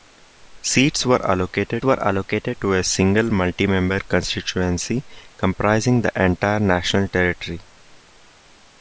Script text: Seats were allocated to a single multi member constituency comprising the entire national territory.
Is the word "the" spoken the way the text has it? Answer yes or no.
yes